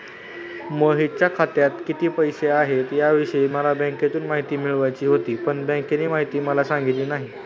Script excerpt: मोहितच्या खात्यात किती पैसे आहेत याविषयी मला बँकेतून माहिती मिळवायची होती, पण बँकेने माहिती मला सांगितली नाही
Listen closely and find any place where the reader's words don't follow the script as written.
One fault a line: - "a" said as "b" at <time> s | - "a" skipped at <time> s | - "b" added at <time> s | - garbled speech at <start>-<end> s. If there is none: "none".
none